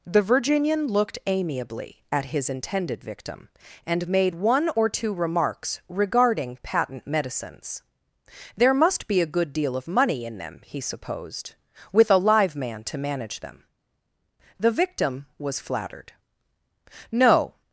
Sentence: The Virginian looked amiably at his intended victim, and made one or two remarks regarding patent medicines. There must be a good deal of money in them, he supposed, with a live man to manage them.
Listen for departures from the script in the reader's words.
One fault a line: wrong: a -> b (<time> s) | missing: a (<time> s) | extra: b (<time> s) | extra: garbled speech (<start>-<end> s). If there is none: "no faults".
extra: The victim was flattered No (14.6 s)